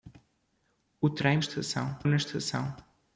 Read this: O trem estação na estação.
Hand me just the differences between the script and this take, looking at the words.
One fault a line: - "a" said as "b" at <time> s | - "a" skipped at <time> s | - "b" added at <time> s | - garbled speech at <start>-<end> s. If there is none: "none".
none